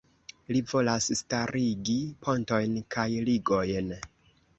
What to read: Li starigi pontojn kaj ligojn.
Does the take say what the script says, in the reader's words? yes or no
no